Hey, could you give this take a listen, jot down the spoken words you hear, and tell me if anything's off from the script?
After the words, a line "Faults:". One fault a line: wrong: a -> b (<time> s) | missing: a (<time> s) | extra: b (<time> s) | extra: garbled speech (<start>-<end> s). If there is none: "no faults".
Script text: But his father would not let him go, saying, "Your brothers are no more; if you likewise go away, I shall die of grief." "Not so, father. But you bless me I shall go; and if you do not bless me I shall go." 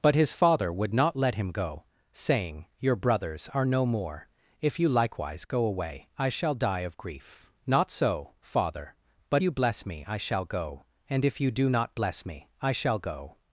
But his father would not let him go, saying, "Your brothers are no more; if you likewise go away, I shall die of grief." "Not so, father. But you bless me I shall go; and if you do not bless me I shall go."
Faults:
no faults